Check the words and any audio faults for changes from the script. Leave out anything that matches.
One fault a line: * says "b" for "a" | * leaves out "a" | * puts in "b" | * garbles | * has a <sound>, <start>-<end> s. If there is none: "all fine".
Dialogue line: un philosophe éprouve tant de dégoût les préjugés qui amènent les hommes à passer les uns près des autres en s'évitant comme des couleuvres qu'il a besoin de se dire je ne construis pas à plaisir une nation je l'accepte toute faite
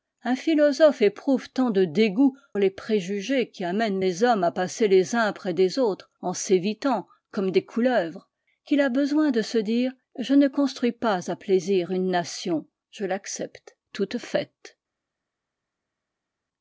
all fine